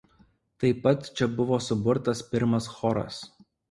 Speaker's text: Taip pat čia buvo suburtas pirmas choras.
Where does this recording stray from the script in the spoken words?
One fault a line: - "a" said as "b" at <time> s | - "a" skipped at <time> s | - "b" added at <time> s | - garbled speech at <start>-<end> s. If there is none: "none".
none